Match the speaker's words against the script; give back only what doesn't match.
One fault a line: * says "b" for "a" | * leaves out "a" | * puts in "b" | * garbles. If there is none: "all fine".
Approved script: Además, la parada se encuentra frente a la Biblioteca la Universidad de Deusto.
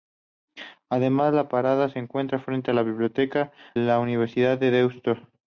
all fine